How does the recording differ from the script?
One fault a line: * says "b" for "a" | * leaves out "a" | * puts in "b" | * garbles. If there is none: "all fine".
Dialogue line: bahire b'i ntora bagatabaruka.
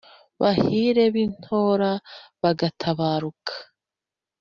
all fine